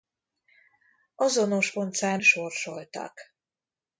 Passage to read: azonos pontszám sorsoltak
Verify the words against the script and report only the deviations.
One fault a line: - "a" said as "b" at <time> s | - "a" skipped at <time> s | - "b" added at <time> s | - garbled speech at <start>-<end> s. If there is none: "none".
none